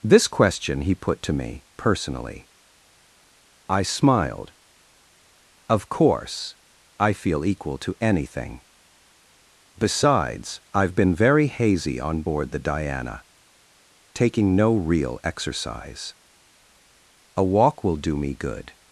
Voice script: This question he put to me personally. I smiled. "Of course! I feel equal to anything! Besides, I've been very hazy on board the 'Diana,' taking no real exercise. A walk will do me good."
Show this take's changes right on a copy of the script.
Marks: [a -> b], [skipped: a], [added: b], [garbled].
This question he put to me personally. I smiled. "Of course! I feel equal to anything! Besides, I've been very hazy on board the 'Diana,' taking no real exercise. A walk will do me good."